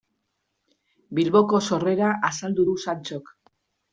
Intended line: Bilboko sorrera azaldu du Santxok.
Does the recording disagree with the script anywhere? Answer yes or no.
no